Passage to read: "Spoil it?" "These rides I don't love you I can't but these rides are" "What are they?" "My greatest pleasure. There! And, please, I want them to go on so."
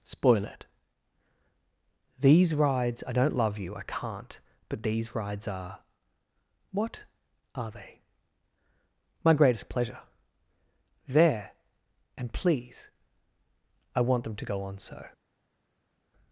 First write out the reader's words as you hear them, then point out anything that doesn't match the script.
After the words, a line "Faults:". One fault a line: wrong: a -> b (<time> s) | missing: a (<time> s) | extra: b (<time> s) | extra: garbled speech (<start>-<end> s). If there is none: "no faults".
"Spoil it?" "These rides I don't love you I can't but these rides are" "What are they?" "My greatest pleasure. There! And, please, I want them to go on so."
Faults:
no faults